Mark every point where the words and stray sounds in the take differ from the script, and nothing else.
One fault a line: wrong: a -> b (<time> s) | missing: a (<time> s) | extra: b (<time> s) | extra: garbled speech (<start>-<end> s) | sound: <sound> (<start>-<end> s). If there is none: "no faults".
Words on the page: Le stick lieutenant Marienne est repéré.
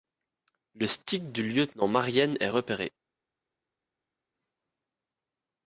extra: du (1.3 s)